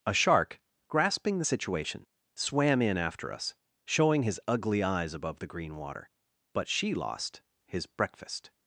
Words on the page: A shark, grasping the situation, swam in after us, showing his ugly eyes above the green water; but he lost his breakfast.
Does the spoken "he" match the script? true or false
false